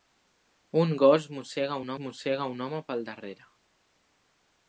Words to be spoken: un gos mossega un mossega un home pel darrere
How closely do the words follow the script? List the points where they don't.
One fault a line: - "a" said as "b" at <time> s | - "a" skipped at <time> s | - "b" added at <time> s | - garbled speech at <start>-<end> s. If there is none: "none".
none